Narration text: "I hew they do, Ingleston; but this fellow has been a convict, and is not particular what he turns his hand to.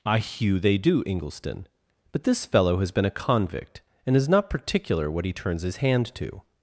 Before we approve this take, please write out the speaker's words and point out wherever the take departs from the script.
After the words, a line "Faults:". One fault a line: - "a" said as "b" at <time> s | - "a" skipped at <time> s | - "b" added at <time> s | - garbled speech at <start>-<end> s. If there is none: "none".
"I hew they do, Ingleston; but this fellow has been a convict, and is not particular what he turns his hand to.
Faults:
none